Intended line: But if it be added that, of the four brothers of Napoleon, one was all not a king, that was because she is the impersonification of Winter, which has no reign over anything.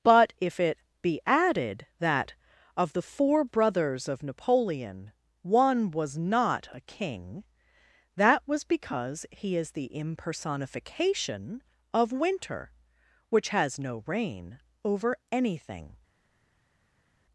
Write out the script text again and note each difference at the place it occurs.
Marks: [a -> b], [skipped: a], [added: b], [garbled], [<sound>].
But if it be added that, of the four brothers of Napoleon, one was [skipped: all] not a king, that was because [she -> he] is the impersonification of Winter, which has no reign over anything.